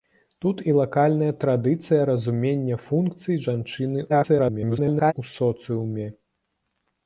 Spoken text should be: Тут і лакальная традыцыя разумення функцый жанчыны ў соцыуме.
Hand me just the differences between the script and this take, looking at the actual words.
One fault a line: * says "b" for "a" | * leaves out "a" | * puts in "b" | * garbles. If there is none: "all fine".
* garbles